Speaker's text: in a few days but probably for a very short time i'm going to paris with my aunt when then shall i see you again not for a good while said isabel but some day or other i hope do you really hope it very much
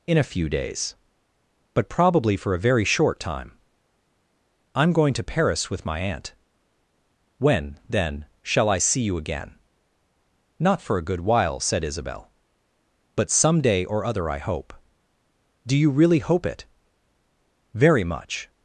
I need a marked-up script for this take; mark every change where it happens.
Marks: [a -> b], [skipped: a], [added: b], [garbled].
in a few days but probably for a very short time i'm going to paris with my aunt when then shall i see you again not for a good while said isabel but some day or other i hope do you really hope it very much